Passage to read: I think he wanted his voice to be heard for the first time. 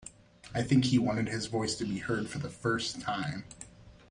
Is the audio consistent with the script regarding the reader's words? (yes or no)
yes